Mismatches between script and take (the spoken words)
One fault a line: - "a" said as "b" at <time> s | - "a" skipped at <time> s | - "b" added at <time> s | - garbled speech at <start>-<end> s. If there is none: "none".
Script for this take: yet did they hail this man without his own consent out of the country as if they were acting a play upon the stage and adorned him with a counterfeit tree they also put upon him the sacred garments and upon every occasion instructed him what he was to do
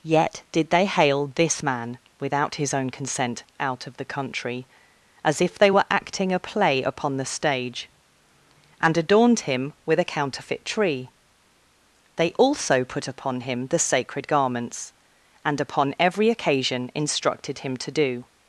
- "what he was" skipped at 17.8 s